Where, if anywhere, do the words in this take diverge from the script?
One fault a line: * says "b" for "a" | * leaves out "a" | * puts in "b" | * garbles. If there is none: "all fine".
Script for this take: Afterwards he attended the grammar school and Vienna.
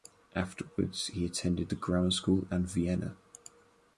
all fine